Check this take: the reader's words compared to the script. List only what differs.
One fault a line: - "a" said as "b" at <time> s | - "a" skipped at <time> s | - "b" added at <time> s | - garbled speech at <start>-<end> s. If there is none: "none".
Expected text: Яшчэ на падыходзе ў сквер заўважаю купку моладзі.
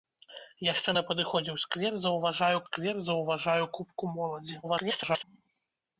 - "сквер заўважаю" added at 2.7 s
- garbled speech at 4.6-5.2 s